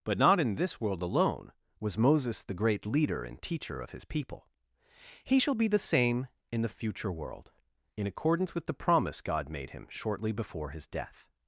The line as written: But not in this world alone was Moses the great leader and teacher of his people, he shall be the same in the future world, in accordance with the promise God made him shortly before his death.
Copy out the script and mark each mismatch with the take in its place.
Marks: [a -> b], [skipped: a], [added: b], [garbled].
But not in this world alone was Moses the great leader and teacher of his people, he shall be the same in the future world, in accordance with the promise God made him shortly before his death.